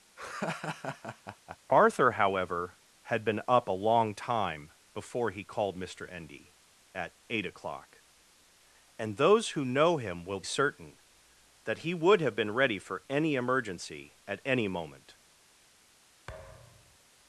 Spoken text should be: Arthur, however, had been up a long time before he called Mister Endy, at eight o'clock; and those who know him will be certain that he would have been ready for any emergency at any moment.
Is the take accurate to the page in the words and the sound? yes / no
no